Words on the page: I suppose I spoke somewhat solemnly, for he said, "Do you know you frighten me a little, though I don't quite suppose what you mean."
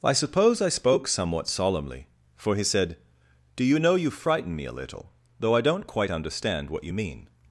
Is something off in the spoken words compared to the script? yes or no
yes